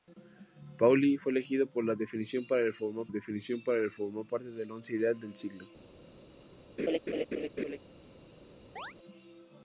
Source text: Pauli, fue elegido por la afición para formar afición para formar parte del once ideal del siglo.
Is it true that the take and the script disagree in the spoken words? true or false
false